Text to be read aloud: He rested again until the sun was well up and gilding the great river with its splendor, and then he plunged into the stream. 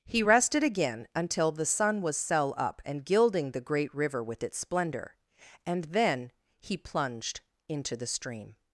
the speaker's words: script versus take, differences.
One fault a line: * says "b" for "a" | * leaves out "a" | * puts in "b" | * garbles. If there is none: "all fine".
* says "cell" for "well"